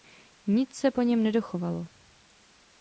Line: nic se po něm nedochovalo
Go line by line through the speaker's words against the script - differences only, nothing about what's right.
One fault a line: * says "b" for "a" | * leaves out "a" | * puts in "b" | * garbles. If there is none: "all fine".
all fine